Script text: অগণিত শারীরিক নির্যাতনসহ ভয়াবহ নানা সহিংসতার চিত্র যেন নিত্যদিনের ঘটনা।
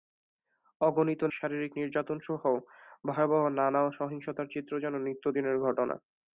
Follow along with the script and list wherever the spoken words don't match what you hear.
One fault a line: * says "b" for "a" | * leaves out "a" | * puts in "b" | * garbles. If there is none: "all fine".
all fine